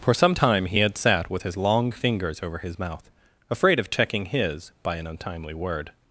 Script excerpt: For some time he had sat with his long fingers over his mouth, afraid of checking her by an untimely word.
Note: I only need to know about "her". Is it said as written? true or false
false